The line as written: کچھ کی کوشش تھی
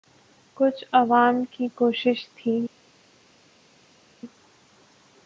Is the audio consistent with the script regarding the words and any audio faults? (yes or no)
no